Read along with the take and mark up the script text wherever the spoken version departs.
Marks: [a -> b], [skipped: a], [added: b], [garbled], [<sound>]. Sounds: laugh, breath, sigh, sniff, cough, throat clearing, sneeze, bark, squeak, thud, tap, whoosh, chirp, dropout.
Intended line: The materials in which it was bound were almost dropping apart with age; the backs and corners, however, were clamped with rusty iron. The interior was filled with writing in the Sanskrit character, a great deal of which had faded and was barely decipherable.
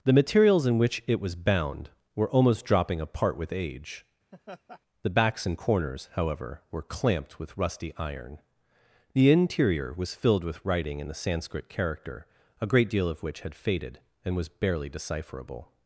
The materials in which it was bound were almost dropping apart with age; [laugh] the backs and corners, however, were clamped with rusty iron. The interior was filled with writing in the Sanskrit character, a great deal of which had faded and was barely decipherable.